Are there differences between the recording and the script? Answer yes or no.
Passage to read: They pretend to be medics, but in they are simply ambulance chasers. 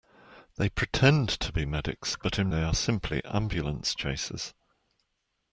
no